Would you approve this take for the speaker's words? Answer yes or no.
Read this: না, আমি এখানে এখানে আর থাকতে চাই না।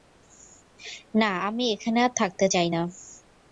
no